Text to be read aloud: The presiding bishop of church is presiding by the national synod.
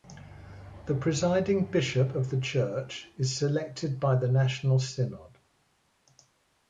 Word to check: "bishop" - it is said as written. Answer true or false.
true